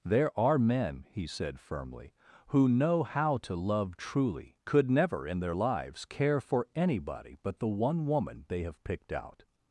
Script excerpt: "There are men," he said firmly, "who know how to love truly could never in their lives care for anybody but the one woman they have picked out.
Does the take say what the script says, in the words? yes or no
yes